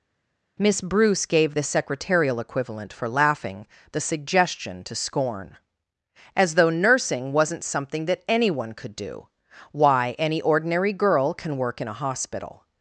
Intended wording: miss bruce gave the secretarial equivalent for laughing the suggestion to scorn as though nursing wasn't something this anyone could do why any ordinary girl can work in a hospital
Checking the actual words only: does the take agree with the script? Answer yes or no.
no